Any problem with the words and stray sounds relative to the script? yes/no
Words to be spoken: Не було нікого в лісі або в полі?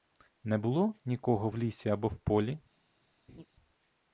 yes